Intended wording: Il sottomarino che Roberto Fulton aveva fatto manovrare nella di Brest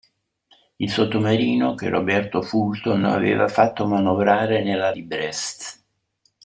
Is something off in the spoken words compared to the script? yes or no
no